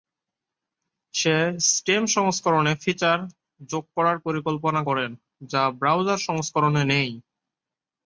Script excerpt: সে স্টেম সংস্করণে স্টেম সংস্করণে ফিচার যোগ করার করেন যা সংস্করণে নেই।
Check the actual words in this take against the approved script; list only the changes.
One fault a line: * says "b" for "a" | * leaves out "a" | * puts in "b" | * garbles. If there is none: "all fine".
* leaves out "স্টেম সংস্করণে"
* puts in "পরিকল্পনা"
* puts in "ব্রাউজার"